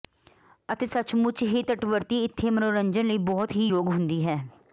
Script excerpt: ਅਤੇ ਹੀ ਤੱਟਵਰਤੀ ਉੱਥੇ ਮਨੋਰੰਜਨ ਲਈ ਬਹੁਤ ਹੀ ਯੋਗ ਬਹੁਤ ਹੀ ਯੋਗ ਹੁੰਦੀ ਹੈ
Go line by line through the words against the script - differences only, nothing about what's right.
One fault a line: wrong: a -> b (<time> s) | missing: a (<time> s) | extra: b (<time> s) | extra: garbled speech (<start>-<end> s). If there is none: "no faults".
extra: ਸੱਚਮੁੱਚ (0.9 s)
wrong: ਉੱਥੇ -> ਇੱਥੇ (2.2 s)
missing: ਬਹੁਤ ਹੀ ਯੋਗ (3.9 s)